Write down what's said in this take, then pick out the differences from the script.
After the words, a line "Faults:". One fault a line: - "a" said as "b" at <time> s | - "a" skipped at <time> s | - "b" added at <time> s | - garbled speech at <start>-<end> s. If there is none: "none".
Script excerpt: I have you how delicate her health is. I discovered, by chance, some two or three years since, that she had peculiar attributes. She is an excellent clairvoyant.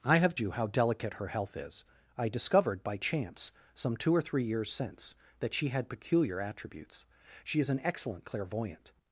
I have you how delicate her health is. I discovered, by chance, some two or three years since, that she had peculiar attributes. She is an excellent clairvoyant.
Faults:
none